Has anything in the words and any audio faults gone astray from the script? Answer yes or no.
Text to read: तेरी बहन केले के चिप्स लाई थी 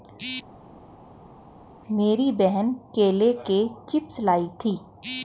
yes